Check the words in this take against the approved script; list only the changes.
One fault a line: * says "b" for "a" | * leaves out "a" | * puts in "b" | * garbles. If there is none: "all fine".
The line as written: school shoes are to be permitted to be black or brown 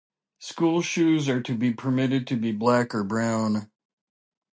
all fine